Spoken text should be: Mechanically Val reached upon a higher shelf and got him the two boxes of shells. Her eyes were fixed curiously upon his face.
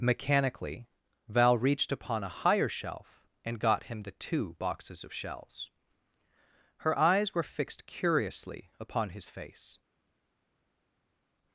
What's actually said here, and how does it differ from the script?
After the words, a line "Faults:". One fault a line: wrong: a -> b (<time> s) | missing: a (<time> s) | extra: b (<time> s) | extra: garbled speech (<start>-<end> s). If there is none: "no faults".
Mechanically Val reached upon a higher shelf and got him the two boxes of shells. Her eyes were fixed curiously upon his face.
Faults:
no faults